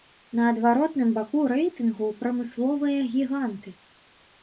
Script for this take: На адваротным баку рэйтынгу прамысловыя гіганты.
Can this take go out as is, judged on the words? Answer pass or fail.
pass